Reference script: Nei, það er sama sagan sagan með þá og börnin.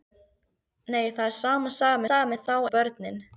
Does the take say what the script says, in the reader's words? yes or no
yes